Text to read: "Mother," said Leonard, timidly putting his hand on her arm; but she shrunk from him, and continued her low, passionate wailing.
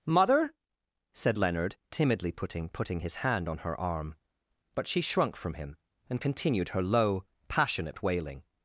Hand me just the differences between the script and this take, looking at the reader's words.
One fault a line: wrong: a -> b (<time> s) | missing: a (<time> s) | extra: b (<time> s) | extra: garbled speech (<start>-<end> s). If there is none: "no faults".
extra: putting (2.7 s)